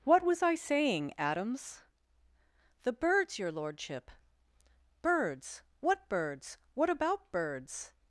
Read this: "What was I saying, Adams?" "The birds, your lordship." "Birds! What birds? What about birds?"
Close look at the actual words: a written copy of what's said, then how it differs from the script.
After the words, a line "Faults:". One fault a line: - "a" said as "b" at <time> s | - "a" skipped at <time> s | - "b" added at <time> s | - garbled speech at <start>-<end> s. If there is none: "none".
"What was I saying, Adams?" "The birds, your lordship." "Birds! What birds? What about birds?"
Faults:
none